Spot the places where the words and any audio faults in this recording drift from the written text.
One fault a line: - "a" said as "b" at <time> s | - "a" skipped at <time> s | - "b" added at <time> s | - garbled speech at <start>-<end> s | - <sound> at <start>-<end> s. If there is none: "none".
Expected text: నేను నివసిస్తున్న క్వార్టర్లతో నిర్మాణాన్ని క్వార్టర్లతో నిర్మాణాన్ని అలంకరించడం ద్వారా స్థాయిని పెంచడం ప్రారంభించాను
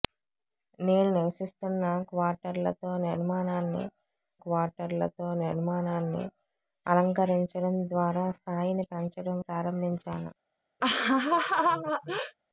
- laugh at 10.8-12.3 s